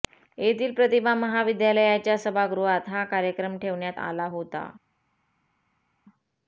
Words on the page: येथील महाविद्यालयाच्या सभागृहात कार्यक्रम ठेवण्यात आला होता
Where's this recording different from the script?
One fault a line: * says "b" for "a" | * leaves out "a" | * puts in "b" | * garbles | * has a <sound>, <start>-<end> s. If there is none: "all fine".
* puts in "प्रतिभा"
* puts in "हा"